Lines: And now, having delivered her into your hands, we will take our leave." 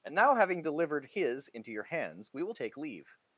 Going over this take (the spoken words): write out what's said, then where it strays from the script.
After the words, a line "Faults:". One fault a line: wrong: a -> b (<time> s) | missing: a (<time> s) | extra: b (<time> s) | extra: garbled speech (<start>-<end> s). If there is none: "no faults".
And now, having delivered his into your hands, we will take leave."
Faults:
wrong: her -> his (1.0 s)
missing: our (2.8 s)